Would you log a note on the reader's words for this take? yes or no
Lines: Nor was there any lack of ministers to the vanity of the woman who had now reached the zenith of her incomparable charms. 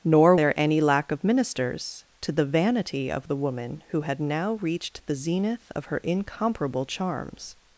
yes